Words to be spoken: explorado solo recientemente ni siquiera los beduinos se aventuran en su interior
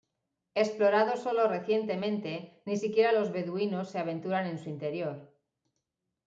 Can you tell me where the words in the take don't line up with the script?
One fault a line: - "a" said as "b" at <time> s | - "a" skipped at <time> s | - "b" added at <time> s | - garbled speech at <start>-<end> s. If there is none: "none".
none